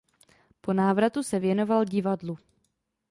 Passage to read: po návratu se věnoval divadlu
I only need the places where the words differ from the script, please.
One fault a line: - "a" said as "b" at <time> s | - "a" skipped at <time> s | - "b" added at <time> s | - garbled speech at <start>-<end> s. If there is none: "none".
none